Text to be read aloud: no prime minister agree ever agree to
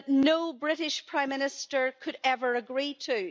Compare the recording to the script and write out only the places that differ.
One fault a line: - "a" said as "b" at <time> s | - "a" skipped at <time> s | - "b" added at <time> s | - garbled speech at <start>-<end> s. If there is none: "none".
- "british" added at 0.5 s
- "agree" said as "could" at 2.0 s